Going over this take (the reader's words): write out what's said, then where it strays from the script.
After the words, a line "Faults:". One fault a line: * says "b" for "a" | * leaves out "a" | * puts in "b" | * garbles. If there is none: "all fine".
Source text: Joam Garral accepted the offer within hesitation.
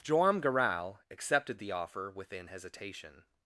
Joam Garral accepted the offer within hesitation.
Faults:
all fine